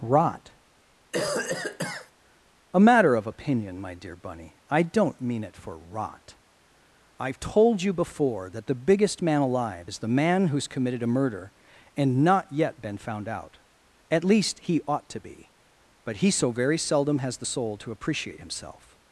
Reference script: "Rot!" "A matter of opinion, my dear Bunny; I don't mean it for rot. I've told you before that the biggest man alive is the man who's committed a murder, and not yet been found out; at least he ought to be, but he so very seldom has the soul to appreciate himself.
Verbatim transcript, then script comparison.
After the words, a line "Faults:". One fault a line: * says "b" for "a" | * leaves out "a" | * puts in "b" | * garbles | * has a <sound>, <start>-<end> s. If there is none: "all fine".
"Rot!" "A matter of opinion, my dear Bunny; I don't mean it for rot. I've told you before that the biggest man alive is the man who's committed a murder, and not yet been found out; at least he ought to be, but he so very seldom has the soul to appreciate himself.
Faults:
* has a cough, 1.1-2.1 s